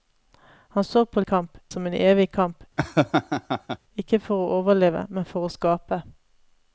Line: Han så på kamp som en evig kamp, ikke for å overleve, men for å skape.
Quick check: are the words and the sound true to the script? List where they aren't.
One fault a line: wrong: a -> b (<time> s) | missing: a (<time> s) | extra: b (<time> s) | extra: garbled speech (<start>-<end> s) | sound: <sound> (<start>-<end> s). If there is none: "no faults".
sound: laugh (2.8-3.8 s)